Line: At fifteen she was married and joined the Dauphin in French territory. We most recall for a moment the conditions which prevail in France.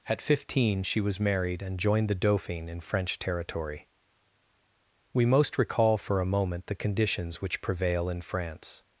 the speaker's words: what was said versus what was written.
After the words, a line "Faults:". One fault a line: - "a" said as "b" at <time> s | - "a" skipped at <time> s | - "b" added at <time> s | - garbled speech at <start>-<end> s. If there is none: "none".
At fifteen she was married and joined the Dauphin in French territory. We most recall for a moment the conditions which prevail in France.
Faults:
none